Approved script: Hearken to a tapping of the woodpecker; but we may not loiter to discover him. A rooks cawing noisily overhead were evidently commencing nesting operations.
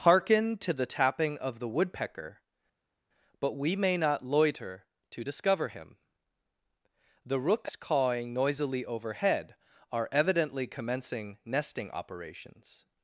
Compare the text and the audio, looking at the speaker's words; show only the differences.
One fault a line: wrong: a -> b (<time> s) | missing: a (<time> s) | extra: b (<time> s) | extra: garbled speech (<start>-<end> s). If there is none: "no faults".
wrong: a -> the (0.7 s)
wrong: A -> The (7.3 s)
wrong: were -> are (9.9 s)